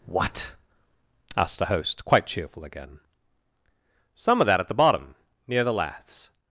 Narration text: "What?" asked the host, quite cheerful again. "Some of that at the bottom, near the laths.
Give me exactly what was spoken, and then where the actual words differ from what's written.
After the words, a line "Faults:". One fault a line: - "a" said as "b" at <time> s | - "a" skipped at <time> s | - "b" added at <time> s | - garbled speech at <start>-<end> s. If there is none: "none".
"What?" asked the host, quite cheerful again. "Some of that at the bottom, near the laths.
Faults:
none